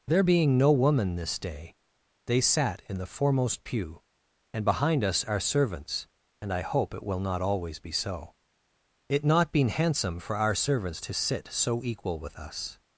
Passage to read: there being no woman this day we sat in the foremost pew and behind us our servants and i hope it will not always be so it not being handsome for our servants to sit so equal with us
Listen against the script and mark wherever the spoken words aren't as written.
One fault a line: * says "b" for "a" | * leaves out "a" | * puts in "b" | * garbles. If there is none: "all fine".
* says "they" for "we"
* says "been" for "being"